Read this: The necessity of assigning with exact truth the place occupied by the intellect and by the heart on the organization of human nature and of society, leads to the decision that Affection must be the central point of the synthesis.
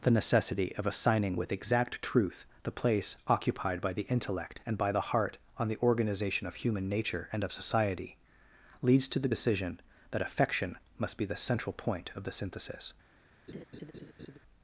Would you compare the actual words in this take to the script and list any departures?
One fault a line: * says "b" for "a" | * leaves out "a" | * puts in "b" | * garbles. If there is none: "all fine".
all fine